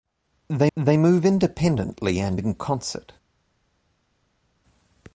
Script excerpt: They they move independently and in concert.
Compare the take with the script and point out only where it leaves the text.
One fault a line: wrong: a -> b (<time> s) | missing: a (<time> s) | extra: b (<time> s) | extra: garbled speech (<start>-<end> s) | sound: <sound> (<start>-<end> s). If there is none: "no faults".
no faults